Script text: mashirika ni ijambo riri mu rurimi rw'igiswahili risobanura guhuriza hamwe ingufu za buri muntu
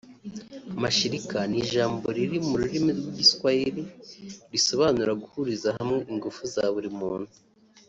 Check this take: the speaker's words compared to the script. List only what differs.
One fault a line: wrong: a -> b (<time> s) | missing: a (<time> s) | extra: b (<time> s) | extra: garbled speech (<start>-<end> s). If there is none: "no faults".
no faults